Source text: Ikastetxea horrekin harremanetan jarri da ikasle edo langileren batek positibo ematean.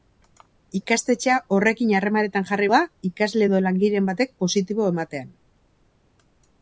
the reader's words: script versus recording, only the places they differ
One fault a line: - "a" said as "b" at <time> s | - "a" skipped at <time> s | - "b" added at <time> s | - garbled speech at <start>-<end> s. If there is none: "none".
none